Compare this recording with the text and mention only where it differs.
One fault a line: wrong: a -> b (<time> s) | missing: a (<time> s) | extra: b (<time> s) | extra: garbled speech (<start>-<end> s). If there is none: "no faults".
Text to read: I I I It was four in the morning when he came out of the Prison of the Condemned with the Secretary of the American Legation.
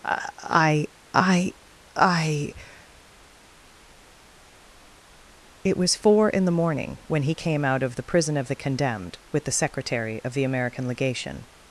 no faults